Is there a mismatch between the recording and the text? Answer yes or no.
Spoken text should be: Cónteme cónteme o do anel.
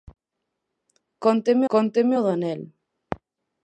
no